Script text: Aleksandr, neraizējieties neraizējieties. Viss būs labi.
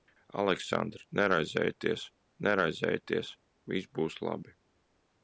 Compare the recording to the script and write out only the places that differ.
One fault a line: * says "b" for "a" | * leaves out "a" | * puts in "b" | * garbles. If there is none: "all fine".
all fine